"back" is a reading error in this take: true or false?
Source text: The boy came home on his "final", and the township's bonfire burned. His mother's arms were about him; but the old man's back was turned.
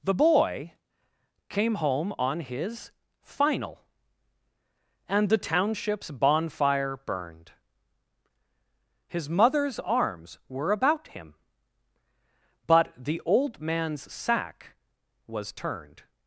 true